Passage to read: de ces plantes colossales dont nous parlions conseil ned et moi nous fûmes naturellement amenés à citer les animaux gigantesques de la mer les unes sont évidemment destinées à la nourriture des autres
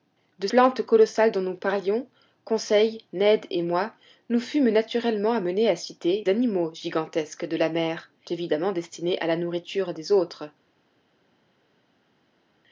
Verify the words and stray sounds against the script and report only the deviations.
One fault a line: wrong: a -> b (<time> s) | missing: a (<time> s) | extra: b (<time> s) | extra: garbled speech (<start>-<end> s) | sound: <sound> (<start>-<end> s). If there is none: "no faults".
missing: ces (0.5 s)
missing: les (6.3 s)
missing: les unes sont (8.1 s)